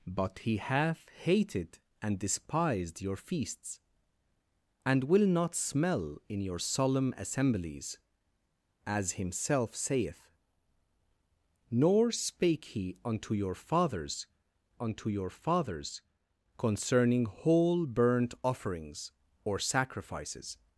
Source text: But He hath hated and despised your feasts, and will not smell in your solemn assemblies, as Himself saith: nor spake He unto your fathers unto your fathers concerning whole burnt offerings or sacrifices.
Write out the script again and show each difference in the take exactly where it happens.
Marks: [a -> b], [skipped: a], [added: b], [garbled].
But He hath hated and despised your feasts, and will not smell in your solemn assemblies, as Himself saith: nor spake He unto your fathers unto your fathers concerning whole burnt offerings or sacrifices.